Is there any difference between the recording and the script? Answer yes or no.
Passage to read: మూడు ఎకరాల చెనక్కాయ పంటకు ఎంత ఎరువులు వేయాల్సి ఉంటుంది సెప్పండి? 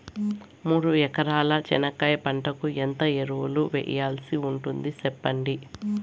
no